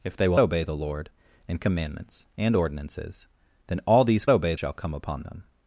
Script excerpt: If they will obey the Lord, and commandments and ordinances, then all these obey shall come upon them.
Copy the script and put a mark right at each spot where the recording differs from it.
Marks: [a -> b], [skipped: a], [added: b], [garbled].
If they will obey the Lord, and commandments and ordinances, then all these obey shall come upon them.